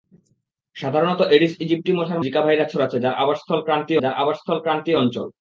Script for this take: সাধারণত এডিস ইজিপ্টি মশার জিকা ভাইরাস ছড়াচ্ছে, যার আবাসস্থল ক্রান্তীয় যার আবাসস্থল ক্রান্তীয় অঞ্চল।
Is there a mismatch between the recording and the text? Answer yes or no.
no